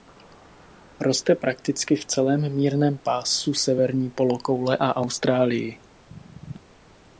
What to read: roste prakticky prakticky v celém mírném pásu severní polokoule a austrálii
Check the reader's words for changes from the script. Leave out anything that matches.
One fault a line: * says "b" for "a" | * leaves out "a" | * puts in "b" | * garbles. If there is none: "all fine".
* leaves out "prakticky"